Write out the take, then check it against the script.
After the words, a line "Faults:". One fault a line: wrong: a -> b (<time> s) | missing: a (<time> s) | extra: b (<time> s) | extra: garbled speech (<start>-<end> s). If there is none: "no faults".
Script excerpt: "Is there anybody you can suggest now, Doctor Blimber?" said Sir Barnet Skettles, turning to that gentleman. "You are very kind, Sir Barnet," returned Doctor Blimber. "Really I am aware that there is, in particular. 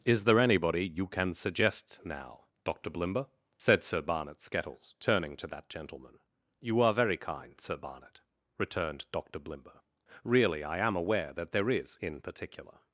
"Is there anybody you can suggest now, Doctor Blimber?" said Sir Barnet Skettles, turning to that gentleman. "You are very kind, Sir Barnet," returned Doctor Blimber. "Really I am aware that there is, in particular.
Faults:
no faults